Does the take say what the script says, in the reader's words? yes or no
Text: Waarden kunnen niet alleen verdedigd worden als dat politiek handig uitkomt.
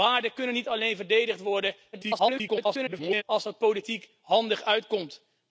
no